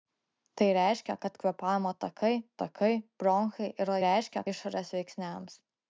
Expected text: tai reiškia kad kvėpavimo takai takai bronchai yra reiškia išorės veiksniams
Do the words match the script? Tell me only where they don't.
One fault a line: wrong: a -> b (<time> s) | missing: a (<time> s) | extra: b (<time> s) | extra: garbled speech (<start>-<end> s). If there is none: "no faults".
no faults